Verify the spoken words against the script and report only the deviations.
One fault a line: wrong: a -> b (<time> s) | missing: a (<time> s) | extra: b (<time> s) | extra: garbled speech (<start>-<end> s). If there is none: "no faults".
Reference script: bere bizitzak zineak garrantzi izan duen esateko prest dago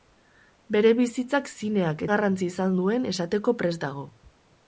no faults